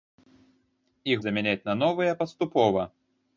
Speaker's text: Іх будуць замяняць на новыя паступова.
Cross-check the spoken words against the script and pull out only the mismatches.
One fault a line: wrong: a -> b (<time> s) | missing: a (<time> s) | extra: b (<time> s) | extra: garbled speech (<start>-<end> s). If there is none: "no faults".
missing: будуць (1.2 s)